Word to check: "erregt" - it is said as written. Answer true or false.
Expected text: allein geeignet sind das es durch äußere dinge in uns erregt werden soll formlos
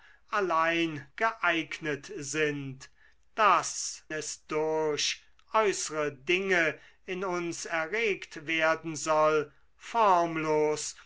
true